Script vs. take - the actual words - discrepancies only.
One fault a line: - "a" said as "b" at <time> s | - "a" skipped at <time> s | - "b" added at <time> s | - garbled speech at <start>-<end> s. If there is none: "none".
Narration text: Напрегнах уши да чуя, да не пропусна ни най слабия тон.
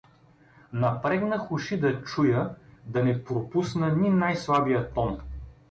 none